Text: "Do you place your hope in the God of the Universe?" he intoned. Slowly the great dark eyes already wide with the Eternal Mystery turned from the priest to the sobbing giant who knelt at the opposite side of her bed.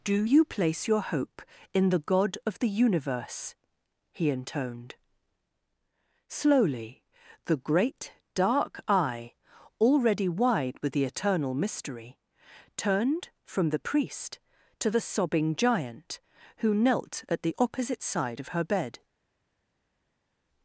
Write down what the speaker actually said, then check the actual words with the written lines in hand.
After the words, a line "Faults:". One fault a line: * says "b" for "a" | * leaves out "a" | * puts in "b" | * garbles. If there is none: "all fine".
"Do you place your hope in the God of the Universe?" he intoned. Slowly the great dark eye already wide with the Eternal Mystery turned from the priest to the sobbing giant who knelt at the opposite side of her bed.
Faults:
* says "eye" for "eyes"